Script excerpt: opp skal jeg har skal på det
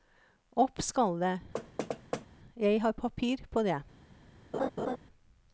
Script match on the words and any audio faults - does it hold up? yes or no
no